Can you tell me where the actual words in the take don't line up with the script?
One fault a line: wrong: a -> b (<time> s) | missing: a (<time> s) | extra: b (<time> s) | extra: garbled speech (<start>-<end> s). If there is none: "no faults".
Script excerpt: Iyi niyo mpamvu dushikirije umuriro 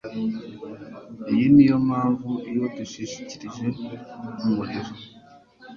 extra: iyo (2.5 s)